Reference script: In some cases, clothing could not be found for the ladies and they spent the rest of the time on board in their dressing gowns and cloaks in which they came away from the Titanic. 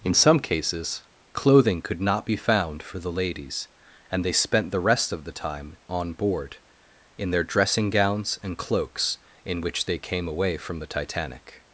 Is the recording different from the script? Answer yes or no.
no